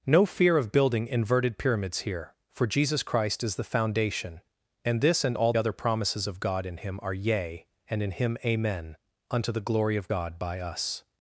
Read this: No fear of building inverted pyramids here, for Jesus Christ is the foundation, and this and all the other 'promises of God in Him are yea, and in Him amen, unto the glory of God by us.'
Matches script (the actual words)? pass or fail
fail